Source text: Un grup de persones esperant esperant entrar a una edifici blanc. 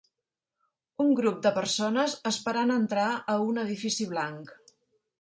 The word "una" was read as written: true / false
false